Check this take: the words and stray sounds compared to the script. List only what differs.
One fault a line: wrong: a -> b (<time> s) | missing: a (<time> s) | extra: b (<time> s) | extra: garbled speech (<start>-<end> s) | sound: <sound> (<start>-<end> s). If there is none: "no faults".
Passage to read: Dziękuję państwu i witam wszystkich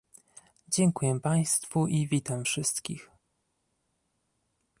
no faults